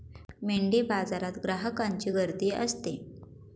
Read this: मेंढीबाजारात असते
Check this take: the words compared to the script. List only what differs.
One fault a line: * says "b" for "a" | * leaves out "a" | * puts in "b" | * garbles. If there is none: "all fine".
* puts in "ग्राहकांची गर्दी"